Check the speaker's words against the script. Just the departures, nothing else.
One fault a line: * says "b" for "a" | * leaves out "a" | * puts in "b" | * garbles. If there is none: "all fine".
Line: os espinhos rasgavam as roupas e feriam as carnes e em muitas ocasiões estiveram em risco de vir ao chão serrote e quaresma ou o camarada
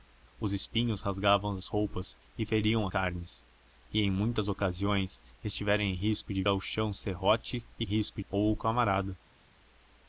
* leaves out "as"
* leaves out "vir"
* says "risco" for "quaresma"